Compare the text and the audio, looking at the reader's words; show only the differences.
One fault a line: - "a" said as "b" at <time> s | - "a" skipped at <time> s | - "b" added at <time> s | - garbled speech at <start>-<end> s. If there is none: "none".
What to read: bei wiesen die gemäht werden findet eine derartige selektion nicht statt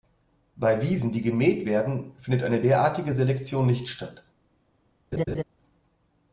none